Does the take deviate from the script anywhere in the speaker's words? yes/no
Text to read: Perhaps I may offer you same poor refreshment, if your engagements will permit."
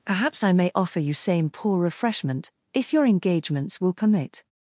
no